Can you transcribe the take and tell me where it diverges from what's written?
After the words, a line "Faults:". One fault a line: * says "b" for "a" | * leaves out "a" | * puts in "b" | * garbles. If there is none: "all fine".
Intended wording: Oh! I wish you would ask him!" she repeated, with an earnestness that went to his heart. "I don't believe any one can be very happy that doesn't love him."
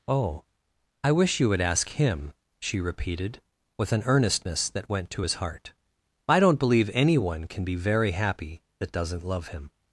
Oh! I wish you would ask him!" she repeated, with an earnestness that went to his heart. "I don't believe any one can be very happy that doesn't love him."
Faults:
all fine